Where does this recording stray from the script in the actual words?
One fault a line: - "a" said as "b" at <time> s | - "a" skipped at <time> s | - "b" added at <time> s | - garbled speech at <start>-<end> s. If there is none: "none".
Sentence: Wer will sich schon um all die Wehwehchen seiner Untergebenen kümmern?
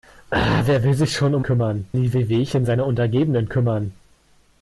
- "all" said as "kümmern" at 1.4 s